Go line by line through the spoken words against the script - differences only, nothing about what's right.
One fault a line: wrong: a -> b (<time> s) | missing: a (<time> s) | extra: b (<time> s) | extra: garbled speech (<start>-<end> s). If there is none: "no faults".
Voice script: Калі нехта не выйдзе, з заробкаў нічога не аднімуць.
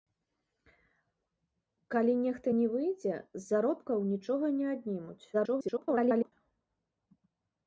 extra: garbled speech (5.3-6.3 s)